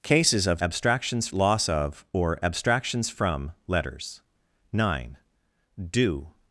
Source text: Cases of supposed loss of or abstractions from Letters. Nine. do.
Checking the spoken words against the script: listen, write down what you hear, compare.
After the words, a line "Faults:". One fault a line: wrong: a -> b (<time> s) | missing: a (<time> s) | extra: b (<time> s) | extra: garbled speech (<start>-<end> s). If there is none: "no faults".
Cases of abstractions loss of or abstractions from Letters. Nine. do.
Faults:
wrong: supposed -> abstractions (0.6 s)